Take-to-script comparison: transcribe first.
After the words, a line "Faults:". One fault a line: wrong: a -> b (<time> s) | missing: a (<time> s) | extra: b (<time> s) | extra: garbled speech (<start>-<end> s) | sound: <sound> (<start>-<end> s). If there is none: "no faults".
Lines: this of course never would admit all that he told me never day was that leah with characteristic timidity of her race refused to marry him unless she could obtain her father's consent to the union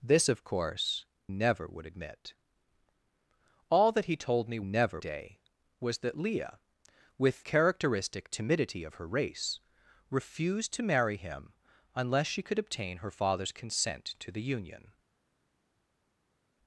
this of course never would admit all that he told me never day was that leah with characteristic timidity of her race refused to marry him unless she could obtain her father's consent to the union
Faults:
no faults